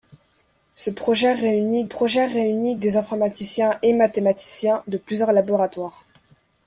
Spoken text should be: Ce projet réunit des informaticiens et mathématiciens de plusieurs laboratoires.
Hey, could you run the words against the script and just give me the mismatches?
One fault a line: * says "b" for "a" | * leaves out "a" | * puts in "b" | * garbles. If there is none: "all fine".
* puts in "projet réunit"